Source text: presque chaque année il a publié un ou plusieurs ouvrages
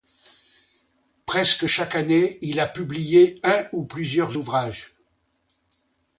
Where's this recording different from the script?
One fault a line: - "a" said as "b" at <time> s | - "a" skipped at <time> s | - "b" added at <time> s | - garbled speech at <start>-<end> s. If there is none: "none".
none